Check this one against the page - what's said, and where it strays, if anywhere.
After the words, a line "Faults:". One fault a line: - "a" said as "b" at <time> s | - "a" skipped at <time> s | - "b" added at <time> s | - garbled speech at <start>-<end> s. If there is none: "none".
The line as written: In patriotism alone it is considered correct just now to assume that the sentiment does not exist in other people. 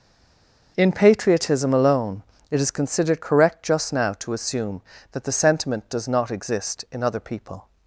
In patriotism alone it is considered correct just now to assume that the sentiment does not exist in other people.
Faults:
none